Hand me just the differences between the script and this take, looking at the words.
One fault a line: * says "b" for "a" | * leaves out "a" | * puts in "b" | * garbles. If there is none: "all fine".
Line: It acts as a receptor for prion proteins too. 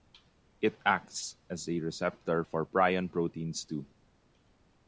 all fine